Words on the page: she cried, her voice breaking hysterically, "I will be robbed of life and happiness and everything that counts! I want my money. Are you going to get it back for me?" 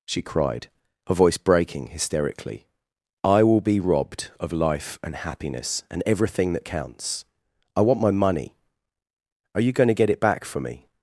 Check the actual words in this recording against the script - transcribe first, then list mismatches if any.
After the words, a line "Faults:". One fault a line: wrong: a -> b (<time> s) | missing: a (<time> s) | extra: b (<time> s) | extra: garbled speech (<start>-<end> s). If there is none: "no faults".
she cried, her voice breaking hysterically, "I will be robbed of life and happiness and everything that counts! I want my money. Are you going to get it back for me?"
Faults:
no faults